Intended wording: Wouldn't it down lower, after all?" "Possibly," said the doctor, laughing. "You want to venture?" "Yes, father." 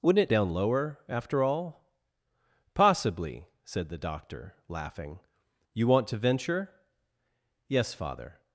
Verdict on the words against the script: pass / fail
pass